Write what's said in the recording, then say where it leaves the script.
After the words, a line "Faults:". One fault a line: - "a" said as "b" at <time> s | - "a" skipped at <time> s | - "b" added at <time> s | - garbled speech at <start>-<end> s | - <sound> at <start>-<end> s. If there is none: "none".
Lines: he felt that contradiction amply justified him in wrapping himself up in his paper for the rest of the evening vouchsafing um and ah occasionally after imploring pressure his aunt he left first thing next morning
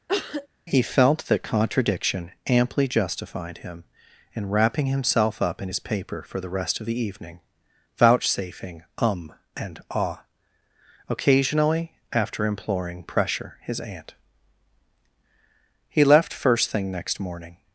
he felt that contradiction amply justified him in wrapping himself up in his paper for the rest of the evening vouchsafing um and ah occasionally after imploring pressure his aunt he left first thing next morning
Faults:
- cough at 0.1-0.5 s